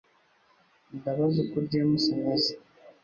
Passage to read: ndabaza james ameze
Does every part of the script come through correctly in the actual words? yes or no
no